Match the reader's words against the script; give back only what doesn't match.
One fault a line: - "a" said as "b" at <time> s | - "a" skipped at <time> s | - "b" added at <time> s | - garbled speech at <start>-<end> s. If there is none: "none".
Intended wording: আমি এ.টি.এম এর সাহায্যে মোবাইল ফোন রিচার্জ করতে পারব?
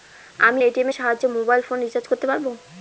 none